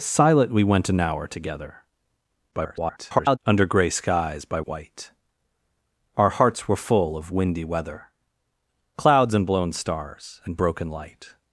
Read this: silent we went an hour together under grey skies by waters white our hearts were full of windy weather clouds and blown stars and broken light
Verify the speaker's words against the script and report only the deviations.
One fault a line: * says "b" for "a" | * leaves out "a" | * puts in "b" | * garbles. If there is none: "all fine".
* garbles
* leaves out "waters"